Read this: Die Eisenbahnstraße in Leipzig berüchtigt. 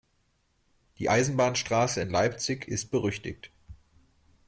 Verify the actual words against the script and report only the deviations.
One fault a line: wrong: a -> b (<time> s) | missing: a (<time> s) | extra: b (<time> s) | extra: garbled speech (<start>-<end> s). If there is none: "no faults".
extra: ist (2.7 s)